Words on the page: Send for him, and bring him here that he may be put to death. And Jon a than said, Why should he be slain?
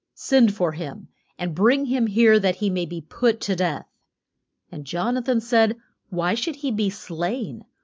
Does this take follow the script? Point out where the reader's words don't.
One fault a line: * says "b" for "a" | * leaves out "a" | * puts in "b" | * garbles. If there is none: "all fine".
all fine